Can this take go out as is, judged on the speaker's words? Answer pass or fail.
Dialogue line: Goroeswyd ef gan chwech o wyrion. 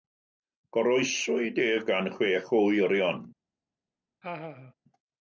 pass